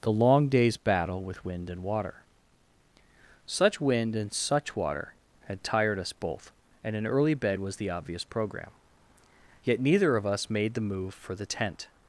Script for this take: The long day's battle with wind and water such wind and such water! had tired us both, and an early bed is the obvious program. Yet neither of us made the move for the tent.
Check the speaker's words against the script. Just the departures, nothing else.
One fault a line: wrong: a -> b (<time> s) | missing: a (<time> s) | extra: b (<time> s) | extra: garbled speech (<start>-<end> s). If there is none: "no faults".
wrong: is -> was (7.6 s)